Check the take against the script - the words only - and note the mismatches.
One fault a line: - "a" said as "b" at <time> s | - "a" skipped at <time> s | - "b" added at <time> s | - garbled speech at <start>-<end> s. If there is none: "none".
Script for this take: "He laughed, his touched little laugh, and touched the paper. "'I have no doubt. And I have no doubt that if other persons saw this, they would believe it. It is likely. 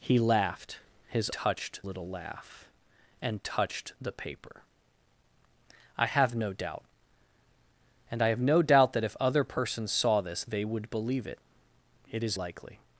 none